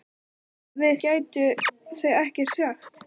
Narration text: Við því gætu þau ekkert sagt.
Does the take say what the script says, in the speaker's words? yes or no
no